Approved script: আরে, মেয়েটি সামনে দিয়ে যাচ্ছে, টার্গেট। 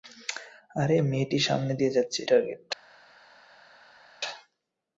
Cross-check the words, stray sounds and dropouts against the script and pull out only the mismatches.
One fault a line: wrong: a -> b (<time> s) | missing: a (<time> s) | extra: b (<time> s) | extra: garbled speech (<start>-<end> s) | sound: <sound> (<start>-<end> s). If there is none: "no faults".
no faults